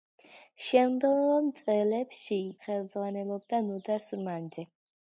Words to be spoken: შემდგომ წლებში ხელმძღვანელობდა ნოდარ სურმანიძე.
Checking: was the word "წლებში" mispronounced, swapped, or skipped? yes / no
no